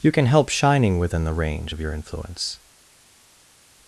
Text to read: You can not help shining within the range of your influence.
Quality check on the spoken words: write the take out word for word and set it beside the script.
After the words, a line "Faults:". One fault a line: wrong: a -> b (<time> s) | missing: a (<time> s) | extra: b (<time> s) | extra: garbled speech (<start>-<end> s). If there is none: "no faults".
You can help shining within the range of your influence.
Faults:
missing: not (0.2 s)